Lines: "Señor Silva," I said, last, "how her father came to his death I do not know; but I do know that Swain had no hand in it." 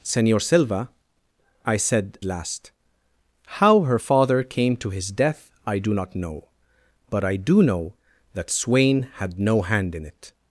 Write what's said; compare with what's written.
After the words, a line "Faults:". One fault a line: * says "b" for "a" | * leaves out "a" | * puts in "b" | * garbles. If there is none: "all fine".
"Señor Silva," I said, last, "how her father came to his death I do not know; but I do know that Swain had no hand in it."
Faults:
all fine